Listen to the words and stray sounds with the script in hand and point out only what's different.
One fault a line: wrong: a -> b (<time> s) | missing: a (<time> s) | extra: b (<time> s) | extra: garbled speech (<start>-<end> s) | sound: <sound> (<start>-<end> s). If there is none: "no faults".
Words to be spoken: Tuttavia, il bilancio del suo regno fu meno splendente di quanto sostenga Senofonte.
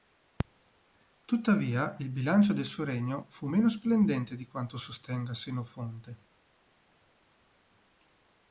no faults